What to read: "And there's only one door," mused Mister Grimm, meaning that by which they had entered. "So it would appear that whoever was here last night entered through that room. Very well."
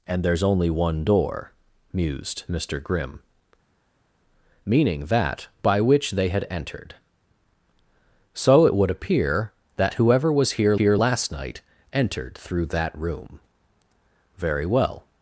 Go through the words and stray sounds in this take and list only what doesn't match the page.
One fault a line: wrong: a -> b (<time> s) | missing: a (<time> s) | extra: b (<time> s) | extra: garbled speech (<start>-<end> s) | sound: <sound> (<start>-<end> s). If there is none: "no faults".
extra: here (10.7 s)